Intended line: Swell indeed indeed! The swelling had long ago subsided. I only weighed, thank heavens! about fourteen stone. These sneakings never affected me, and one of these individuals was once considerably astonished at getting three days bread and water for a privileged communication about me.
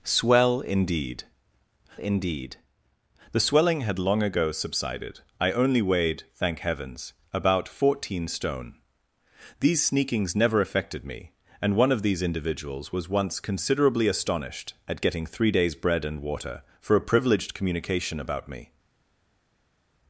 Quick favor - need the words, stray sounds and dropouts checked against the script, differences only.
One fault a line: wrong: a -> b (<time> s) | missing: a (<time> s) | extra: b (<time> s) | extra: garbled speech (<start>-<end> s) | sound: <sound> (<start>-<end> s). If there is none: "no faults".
no faults